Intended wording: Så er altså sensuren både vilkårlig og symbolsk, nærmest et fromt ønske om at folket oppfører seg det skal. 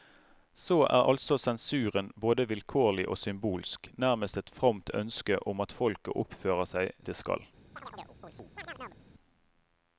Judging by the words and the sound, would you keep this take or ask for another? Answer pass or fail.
fail